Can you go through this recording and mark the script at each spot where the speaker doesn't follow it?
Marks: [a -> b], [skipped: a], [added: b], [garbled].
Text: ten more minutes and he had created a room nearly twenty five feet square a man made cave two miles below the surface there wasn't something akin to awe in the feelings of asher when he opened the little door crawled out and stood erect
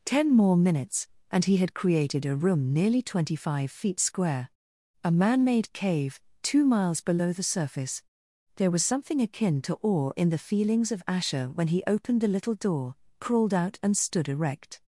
ten more minutes and he had created a room nearly twenty five feet square a man made cave two miles below the surface there [wasn't -> was] something akin to awe in the feelings of asher when he opened the little door crawled out and stood erect